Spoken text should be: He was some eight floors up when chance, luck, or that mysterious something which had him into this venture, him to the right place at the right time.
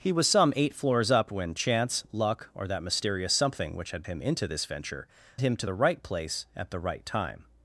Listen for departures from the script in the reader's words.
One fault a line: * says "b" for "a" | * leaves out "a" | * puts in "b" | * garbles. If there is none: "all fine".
all fine